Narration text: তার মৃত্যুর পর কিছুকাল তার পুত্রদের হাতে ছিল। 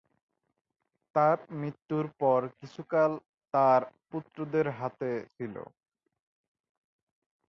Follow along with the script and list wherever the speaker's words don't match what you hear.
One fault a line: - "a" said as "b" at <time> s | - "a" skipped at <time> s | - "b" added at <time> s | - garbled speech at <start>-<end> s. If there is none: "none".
none